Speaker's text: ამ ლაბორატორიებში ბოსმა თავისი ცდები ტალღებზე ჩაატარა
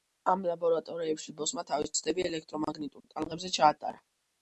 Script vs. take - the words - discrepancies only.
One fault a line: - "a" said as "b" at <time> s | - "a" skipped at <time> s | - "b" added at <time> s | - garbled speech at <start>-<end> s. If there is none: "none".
- "ელექტრომაგნიტურ" added at 2.3 s